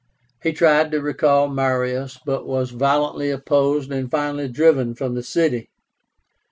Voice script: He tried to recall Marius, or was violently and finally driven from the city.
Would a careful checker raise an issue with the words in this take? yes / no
yes